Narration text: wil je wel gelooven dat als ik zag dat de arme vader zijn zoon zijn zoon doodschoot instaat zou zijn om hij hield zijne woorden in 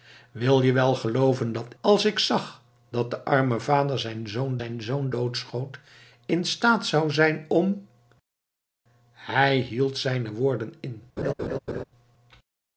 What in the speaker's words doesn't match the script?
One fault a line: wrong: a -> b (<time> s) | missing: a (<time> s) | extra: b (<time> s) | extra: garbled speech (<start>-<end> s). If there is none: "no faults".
no faults